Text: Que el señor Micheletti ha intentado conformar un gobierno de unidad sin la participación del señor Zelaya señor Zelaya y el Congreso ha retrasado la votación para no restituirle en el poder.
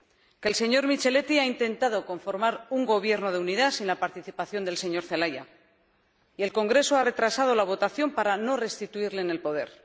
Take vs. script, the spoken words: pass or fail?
fail